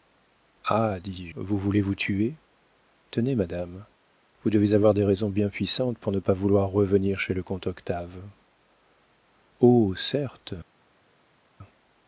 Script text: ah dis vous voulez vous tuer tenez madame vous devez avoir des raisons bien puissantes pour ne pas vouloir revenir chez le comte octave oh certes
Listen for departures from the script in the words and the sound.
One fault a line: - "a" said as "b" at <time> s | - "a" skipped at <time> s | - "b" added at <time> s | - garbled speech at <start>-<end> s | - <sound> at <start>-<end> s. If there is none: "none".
none